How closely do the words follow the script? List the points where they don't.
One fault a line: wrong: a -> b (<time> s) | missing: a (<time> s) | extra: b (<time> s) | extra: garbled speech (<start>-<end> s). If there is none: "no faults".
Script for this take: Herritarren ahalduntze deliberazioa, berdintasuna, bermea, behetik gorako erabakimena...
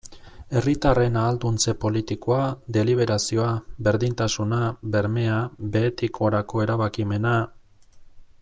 extra: politikoa (1.8 s)